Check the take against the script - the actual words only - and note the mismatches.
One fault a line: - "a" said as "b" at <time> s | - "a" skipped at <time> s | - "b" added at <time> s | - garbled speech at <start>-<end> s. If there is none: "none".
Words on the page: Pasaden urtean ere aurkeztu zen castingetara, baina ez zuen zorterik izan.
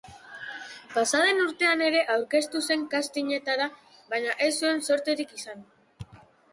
none